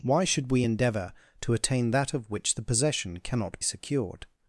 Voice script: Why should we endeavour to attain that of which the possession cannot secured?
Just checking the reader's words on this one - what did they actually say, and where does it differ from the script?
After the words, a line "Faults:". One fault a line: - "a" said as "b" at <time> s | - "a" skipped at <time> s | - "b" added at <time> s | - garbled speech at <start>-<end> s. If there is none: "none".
Why should we endeavour to attain that of which the possession cannot secured?
Faults:
none